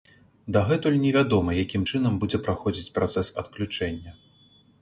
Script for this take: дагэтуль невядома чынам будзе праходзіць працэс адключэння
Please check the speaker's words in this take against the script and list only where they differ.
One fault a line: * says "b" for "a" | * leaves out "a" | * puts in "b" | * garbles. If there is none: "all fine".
* puts in "якім"